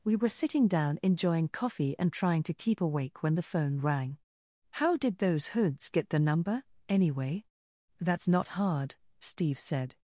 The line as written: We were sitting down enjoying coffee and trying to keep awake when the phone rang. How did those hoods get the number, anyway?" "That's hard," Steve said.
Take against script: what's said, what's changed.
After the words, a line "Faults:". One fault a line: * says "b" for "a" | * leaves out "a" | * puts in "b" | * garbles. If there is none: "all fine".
We were sitting down enjoying coffee and trying to keep awake when the phone rang. How did those hoods get the number, anyway?" "That's not hard," Steve said.
Faults:
* puts in "not"